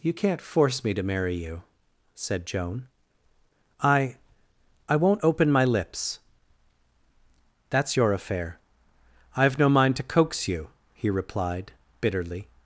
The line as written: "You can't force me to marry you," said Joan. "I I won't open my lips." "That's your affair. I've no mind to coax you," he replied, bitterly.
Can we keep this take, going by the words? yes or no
yes